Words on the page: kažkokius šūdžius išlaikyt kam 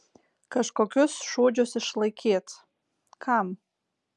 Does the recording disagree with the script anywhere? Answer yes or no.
no